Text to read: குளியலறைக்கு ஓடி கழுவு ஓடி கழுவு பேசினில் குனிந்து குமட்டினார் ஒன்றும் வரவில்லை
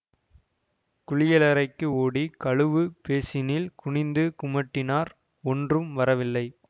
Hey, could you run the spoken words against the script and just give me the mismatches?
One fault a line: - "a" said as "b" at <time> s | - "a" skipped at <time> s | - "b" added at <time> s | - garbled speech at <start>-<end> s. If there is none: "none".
- "ஓடி கழுவு" skipped at 2.8 s